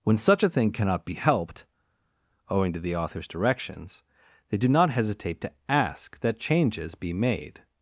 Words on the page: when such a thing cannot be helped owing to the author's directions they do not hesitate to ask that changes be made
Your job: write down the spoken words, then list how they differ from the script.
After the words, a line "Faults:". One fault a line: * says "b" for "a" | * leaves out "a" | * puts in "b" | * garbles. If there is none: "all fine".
when such a thing cannot be helped owing to the author's directions they do not hesitate to ask that changes be made
Faults:
all fine